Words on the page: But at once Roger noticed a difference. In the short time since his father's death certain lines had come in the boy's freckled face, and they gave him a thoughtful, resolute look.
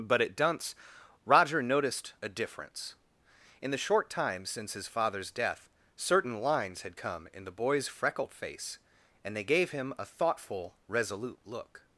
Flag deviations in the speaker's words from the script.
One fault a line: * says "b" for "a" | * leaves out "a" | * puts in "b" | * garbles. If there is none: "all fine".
* says "dunce" for "once"